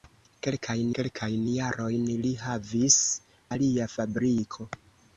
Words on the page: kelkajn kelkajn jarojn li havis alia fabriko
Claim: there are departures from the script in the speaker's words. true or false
false